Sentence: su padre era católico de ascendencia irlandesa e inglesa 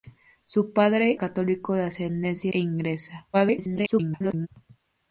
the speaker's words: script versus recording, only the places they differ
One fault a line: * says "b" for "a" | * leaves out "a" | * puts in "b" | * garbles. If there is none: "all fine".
* leaves out "era"
* leaves out "irlandesa"
* garbles